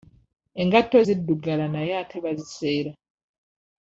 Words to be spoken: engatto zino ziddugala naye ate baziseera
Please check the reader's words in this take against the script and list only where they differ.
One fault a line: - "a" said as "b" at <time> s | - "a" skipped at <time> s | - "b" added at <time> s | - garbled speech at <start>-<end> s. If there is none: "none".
- "zino" skipped at 1.0 s